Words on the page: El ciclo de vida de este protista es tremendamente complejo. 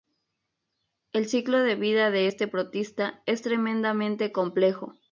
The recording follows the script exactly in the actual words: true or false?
true